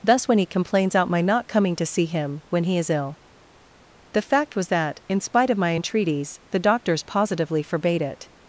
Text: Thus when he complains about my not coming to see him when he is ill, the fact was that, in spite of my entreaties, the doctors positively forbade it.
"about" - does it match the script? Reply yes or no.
no